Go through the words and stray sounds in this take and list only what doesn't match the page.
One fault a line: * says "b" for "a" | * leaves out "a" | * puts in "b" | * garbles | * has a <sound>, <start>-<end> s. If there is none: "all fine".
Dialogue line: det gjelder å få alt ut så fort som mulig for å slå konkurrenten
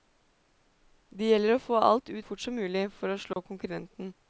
* leaves out "så"
* has a dropout, 3.3-3.4 s